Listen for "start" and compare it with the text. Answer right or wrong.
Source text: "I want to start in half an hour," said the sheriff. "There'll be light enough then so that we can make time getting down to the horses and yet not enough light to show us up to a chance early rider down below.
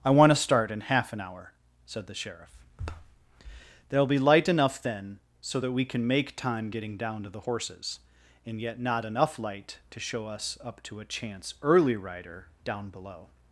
right